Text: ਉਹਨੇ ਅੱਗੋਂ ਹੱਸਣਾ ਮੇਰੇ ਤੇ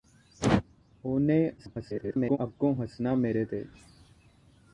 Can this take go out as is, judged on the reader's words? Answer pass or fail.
fail